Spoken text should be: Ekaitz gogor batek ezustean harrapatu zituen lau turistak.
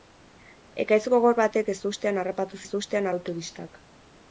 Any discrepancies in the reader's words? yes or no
yes